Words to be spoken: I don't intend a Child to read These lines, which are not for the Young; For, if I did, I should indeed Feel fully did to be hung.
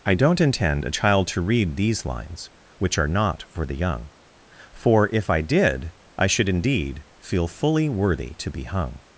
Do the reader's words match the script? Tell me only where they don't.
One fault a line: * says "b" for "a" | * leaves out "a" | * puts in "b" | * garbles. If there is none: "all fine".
* says "worthy" for "did"